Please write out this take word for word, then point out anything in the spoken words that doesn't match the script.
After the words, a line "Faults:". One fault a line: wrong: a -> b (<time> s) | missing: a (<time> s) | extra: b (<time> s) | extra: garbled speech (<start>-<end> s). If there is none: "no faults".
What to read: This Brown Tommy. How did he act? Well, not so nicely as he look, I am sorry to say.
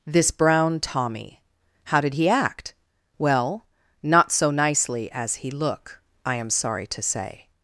This Brown Tommy. How did he act? Well, not so nicely as he look, I am sorry to say.
Faults:
no faults